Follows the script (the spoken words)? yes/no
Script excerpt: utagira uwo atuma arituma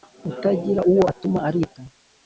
yes